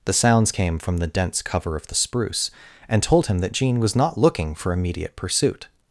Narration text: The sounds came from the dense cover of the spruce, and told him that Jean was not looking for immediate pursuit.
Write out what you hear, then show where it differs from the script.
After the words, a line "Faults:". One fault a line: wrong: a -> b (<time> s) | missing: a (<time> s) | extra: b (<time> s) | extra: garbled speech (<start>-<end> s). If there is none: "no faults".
The sounds came from the dense cover of the spruce, and told him that Jean was not looking for immediate pursuit.
Faults:
no faults